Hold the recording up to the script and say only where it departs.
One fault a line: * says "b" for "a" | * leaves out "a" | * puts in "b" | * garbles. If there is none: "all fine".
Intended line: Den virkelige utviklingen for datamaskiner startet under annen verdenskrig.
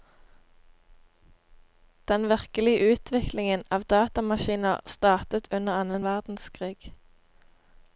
* says "av" for "for"